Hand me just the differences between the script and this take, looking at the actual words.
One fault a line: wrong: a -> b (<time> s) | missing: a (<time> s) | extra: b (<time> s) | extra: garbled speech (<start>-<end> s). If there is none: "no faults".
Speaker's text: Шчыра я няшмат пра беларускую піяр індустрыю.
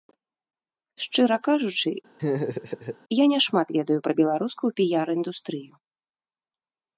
extra: кажучы (1.5 s)
extra: ведаю (3.8 s)